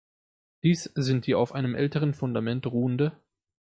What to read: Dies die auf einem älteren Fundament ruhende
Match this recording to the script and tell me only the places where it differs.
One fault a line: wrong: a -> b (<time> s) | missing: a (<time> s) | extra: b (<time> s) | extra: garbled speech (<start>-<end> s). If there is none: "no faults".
extra: sind (0.9 s)